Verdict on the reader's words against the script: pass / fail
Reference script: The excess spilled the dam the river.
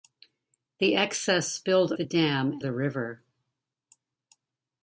pass